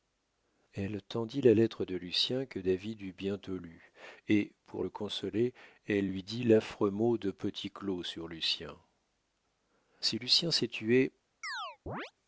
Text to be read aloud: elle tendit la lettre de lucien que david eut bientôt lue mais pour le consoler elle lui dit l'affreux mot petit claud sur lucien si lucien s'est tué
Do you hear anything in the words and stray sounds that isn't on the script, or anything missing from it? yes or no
yes